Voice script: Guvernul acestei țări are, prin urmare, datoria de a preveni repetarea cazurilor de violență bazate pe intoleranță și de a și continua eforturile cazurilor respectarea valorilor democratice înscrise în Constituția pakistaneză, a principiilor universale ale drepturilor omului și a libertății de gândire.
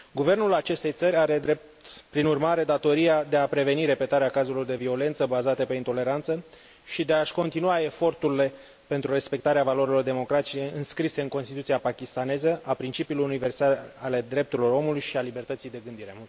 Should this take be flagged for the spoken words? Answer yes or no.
yes